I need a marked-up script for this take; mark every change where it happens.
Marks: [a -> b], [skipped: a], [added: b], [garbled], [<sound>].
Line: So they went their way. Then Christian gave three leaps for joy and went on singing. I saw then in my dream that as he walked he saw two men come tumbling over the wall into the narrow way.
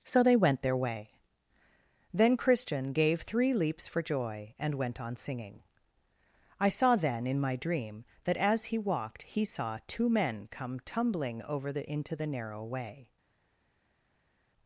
So they went their way. Then Christian gave three leaps for joy and went on singing. I saw then in my dream that as he walked he saw two men come tumbling over the [skipped: wall] into the narrow way.